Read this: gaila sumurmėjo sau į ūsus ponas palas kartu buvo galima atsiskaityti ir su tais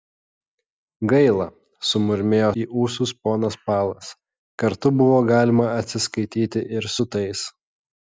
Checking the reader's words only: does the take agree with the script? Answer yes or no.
no